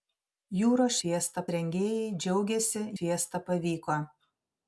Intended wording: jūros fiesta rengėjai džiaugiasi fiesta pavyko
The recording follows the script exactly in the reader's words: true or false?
true